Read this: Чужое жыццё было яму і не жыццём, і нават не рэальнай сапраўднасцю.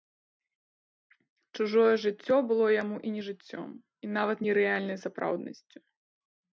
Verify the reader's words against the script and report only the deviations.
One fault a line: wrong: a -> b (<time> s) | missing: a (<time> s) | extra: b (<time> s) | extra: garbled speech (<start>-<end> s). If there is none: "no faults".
no faults